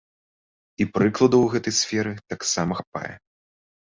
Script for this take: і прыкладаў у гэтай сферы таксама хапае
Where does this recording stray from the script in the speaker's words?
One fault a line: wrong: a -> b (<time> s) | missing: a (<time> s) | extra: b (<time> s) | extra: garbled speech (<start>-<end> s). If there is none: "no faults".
no faults